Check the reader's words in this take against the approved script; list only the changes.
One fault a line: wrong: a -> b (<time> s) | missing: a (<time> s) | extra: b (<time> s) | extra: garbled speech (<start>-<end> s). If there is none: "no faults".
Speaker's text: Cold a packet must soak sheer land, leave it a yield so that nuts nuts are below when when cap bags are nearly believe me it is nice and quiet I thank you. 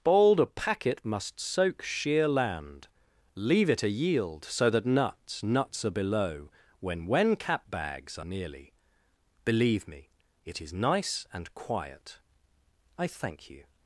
wrong: Cold -> Bold (0.0 s)